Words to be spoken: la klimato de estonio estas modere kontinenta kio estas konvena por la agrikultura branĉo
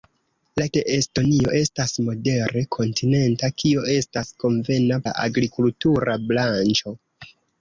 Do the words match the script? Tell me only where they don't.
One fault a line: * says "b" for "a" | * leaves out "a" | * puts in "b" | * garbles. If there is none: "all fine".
* leaves out "klimato"
* leaves out "por"